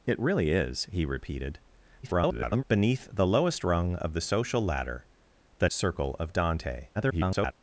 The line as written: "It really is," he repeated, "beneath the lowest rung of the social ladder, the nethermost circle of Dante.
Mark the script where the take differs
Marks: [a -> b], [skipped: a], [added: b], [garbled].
"It really is," he repeated, [garbled] "beneath the lowest rung of the social ladder, the [skipped: nethermost] circle of Dante. [garbled]